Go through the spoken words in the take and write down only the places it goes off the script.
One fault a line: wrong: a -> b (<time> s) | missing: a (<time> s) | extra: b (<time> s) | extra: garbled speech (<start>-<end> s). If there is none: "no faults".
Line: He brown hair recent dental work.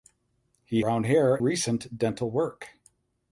no faults